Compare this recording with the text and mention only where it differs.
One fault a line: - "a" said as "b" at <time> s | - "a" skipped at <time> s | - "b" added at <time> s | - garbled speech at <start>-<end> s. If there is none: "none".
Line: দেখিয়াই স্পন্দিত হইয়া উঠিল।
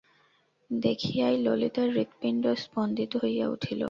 - "ললিতার হৃৎপিণ্ড" added at 1.4 s